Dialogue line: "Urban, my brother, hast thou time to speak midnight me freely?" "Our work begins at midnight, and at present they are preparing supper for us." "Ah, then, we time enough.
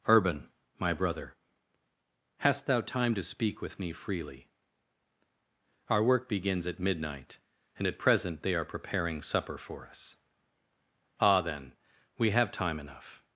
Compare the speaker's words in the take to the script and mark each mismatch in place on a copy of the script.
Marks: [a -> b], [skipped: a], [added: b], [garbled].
"Urban, my brother, hast thou time to speak [midnight -> with] me freely?" "Our work begins at midnight, and at present they are preparing supper for us." "Ah, then, we [added: have] time enough.